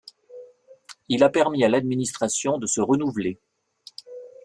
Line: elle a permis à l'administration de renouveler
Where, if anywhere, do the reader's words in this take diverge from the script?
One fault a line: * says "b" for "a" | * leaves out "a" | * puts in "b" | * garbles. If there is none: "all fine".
* says "il" for "elle"
* puts in "se"